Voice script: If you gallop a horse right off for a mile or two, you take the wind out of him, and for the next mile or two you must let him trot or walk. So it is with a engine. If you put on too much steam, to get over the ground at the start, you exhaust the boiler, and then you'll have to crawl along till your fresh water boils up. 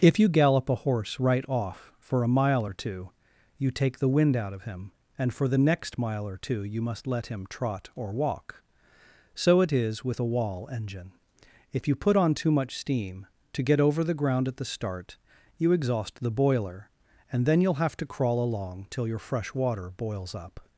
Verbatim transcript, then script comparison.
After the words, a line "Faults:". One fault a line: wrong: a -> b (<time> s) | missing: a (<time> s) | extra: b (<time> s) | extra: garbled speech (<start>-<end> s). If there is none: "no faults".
If you gallop a horse right off for a mile or two, you take the wind out of him, and for the next mile or two you must let him trot or walk. So it is with a wall engine. If you put on too much steam, to get over the ground at the start, you exhaust the boiler, and then you'll have to crawl along till your fresh water boils up.
Faults:
extra: wall (10.2 s)